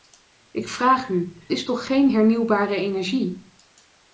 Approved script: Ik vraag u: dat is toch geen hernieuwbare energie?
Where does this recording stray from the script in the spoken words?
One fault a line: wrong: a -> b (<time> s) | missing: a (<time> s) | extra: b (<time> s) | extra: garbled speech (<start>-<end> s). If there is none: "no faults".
missing: dat (1.4 s)